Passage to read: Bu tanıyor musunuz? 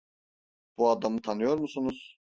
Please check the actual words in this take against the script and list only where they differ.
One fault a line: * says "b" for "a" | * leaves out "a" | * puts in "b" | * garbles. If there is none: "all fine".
* puts in "adamı"